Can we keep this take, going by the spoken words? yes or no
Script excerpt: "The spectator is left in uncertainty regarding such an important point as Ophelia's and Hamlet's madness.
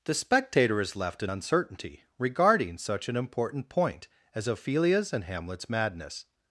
yes